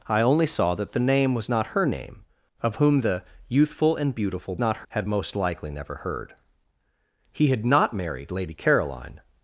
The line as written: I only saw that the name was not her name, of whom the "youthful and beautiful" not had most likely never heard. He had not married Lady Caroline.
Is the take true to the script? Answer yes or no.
yes